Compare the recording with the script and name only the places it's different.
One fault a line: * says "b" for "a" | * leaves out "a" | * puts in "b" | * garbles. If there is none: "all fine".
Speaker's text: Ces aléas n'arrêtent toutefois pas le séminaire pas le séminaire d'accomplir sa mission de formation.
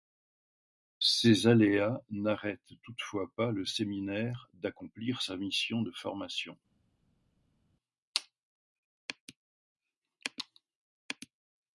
* leaves out "pas le séminaire"